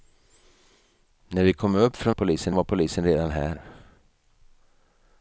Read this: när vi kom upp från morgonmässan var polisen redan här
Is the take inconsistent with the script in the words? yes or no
yes